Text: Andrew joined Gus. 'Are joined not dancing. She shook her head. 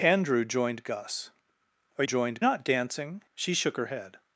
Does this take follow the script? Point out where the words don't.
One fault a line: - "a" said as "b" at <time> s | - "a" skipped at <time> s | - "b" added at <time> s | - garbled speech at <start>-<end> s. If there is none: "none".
none